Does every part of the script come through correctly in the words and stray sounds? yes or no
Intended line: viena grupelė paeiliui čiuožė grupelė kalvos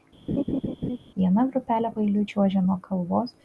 no